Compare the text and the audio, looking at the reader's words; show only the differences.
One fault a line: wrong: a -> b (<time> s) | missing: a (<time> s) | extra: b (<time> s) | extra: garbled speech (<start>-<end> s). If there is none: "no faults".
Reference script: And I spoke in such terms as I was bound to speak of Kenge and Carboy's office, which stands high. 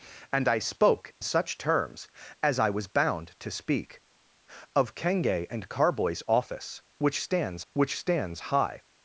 missing: in (1.1 s)
extra: which stands (7.7 s)